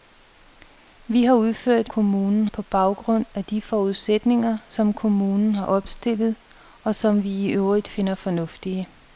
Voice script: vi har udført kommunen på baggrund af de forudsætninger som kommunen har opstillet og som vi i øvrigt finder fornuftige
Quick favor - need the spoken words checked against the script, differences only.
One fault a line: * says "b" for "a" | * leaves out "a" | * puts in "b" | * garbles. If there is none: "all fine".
all fine